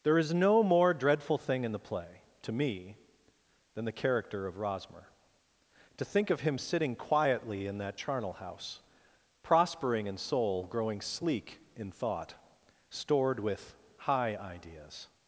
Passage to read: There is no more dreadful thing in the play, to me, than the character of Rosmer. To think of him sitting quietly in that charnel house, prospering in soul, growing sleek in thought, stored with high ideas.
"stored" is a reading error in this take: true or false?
false